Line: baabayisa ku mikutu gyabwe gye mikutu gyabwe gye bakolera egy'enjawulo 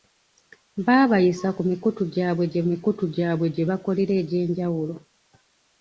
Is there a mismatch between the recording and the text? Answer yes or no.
no